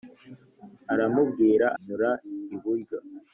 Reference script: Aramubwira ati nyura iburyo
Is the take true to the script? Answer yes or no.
no